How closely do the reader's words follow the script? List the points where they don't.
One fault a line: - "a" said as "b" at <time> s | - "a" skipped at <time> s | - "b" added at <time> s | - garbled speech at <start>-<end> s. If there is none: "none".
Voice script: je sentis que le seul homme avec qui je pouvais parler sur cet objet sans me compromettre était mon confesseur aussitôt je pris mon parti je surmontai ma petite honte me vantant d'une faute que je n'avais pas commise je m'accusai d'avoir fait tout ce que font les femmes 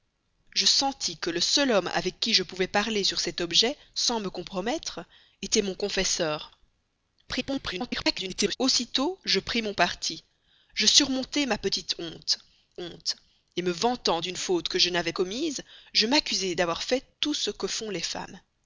- garbled speech at 7.3-8.6 s
- "honte" added at 12.8 s
- "pas" skipped at 15.1 s